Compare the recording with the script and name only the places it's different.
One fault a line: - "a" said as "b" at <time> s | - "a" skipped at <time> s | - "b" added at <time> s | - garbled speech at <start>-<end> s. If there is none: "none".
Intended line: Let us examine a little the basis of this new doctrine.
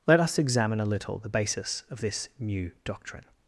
none